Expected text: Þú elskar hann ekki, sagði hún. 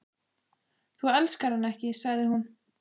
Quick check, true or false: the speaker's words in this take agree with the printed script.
true